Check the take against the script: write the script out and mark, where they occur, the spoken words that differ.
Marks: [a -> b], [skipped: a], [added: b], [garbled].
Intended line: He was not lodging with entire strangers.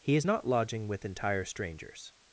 He [was -> is] not lodging with entire strangers.